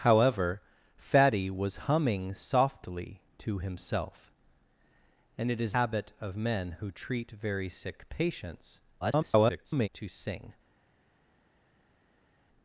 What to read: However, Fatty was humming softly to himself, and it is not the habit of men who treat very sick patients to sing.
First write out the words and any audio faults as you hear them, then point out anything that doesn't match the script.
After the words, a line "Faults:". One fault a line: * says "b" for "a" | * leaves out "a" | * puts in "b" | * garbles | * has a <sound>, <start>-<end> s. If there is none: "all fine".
However, Fatty was humming softly to himself, and it is habit of men who treat very sick patients [garbled] to sing.
Faults:
* leaves out "not the"
* garbles